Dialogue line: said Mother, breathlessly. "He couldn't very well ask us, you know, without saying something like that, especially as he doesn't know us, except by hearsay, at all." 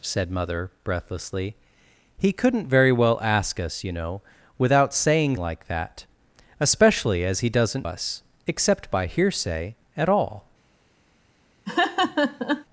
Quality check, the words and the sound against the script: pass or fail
fail